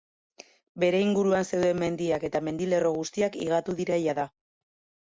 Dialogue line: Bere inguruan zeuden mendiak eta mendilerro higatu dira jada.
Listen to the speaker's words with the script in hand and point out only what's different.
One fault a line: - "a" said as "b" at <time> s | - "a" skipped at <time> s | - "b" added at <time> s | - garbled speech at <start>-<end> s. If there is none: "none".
- "guztiak" added at 3.0 s